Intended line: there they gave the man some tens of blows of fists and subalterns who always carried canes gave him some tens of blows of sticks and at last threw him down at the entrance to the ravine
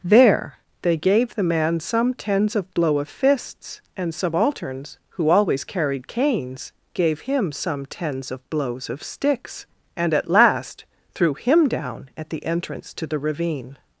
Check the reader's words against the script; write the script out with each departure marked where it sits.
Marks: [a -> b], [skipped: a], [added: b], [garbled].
there they gave the man some tens of [blows -> blow] of fists and subalterns who always carried canes gave him some tens of blows of sticks and at last threw him down at the entrance to the ravine